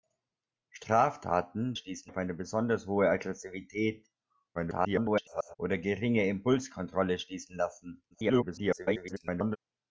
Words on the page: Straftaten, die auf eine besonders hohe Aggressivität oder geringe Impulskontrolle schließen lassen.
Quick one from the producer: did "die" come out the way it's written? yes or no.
no